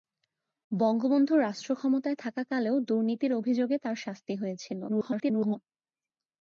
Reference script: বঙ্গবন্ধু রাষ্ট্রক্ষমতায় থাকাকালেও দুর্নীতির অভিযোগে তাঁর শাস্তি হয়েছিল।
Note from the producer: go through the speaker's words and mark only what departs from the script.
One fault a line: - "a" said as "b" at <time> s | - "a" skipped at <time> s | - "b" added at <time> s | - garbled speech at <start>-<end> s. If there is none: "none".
- garbled speech at 4.9-5.6 s